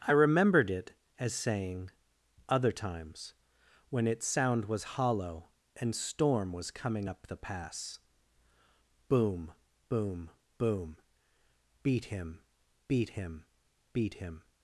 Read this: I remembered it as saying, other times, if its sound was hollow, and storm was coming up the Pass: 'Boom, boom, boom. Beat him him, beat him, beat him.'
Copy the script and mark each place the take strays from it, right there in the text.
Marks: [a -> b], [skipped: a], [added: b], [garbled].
I remembered it as saying, other times, [if -> when] its sound was hollow, and storm was coming up the Pass: 'Boom, boom, boom. Beat him [skipped: him,] beat him, beat him.'